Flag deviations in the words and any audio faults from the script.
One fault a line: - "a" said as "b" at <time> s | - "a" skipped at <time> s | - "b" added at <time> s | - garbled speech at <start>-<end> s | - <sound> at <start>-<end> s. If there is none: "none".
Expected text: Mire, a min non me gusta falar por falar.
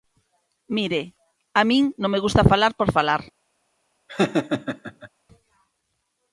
- laugh at 4.1-5.1 s